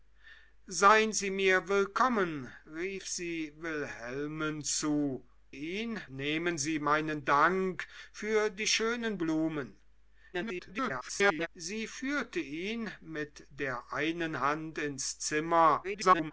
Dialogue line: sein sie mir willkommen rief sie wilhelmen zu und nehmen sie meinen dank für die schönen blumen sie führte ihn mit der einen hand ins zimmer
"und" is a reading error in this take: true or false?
true